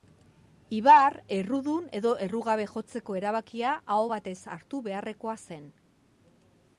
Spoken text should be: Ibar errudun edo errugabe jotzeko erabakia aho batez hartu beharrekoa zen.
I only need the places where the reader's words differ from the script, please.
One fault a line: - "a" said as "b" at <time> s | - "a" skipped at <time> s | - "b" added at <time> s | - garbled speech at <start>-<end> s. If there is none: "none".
none